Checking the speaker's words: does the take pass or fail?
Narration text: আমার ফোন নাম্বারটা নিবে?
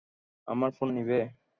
fail